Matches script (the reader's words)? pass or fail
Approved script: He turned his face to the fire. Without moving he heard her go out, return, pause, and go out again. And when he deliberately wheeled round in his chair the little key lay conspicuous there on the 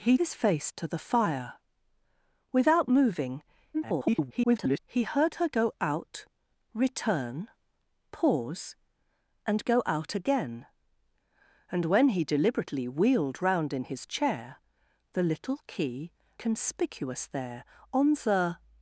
fail